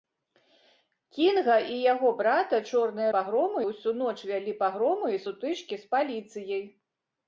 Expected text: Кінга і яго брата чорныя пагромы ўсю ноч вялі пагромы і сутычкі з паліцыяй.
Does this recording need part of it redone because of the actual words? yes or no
no